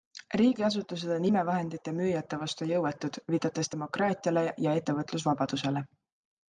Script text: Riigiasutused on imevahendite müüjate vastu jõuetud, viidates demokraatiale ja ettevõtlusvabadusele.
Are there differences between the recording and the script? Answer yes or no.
no